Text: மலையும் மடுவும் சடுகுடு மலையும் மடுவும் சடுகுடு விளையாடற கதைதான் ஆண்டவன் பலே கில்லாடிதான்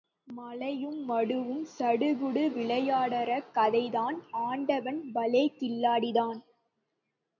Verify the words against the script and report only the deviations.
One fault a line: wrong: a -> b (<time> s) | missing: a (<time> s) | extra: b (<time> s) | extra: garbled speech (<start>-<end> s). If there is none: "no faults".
missing: மலையும் மடுவும் சடுகுடு (2.4 s)